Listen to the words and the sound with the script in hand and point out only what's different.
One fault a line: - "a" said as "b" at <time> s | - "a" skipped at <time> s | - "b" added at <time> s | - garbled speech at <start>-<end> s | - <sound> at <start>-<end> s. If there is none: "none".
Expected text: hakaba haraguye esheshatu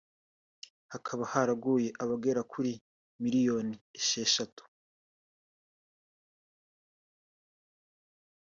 - "abagera kuri miliyoni" added at 2.0 s